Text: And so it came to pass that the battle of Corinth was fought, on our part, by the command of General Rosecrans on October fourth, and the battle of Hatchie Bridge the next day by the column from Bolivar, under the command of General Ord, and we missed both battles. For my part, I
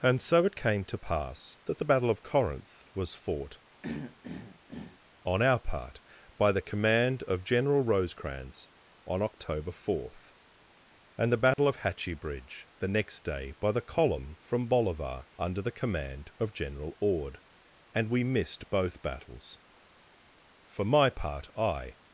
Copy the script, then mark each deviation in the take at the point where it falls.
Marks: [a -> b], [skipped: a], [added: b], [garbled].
And so it came to pass that the battle of Corinth was fought, on our part, by the command of General Rosecrans on October fourth, and the battle of Hatchie Bridge the next day by the column from Bolivar, under the command of General Ord, and we missed both battles. For my part, I